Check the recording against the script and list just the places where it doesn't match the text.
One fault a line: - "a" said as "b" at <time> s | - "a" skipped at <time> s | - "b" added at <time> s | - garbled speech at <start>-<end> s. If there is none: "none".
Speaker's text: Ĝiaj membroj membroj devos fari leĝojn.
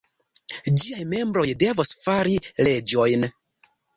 - "membroj" skipped at 1.4 s